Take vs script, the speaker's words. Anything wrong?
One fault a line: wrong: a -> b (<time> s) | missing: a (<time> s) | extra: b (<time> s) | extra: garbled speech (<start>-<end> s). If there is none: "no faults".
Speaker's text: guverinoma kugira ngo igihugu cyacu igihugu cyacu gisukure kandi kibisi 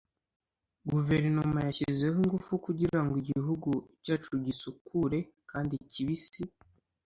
extra: yashyizeho ingufu (1.7 s)
missing: igihugu cyacu (4.3 s)